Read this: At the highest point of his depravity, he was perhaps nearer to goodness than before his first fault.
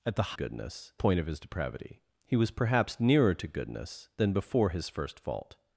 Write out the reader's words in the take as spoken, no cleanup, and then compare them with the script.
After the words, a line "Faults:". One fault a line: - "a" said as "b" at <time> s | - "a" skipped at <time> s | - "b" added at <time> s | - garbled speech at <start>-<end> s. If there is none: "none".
At the goodness point of his depravity, he was perhaps nearer to goodness than before his first fault.
Faults:
- "highest" said as "goodness" at 0.3 s